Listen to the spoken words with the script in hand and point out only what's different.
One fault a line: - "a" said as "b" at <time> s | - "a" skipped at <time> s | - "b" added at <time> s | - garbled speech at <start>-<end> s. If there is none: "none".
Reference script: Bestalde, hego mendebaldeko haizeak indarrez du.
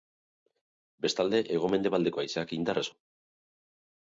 none